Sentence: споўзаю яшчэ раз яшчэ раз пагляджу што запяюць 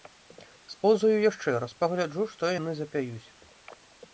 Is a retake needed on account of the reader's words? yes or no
yes